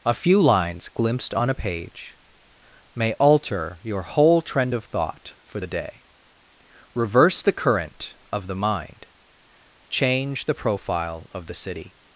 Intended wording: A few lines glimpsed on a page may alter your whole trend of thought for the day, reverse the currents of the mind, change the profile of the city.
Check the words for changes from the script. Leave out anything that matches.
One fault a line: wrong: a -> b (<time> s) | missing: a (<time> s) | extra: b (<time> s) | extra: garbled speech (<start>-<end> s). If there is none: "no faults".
wrong: currents -> current (7.5 s)